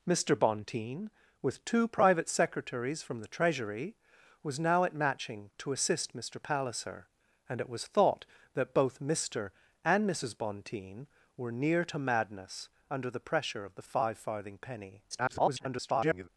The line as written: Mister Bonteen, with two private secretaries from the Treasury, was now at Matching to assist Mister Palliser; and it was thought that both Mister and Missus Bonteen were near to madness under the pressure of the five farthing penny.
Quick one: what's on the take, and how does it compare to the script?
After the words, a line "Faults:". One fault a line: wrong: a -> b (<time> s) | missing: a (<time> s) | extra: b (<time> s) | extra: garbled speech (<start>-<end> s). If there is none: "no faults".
Mister Bonteen, with two private secretaries from the Treasury, was now at Matching to assist Mister Palliser; and it was thought that both Mister and Missus Bonteen were near to madness under the pressure of the five farthing penny. [garbled]
Faults:
extra: garbled speech (15.1-16.3 s)